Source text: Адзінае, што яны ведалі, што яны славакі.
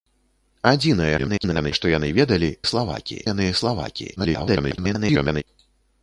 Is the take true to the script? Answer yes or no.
no